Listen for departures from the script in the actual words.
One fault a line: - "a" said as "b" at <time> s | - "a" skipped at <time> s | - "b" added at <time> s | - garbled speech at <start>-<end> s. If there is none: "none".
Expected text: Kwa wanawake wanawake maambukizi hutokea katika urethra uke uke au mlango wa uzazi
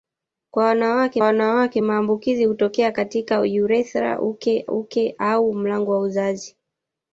none